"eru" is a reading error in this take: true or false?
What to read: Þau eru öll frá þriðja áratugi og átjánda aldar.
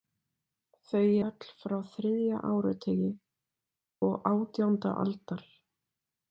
true